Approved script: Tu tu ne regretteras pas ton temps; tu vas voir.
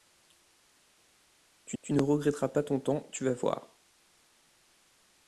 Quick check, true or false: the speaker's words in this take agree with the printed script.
true